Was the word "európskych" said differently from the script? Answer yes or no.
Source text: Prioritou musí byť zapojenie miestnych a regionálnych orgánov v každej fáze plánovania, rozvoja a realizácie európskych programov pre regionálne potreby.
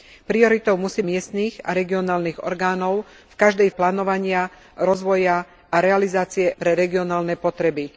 yes